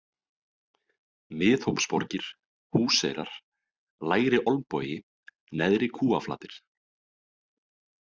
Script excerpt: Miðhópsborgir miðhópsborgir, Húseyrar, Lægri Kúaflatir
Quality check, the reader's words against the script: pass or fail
fail